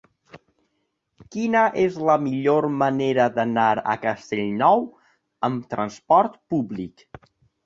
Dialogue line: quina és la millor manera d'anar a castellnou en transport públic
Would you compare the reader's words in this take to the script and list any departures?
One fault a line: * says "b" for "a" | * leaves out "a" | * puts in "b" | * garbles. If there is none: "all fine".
* says "amb" for "en"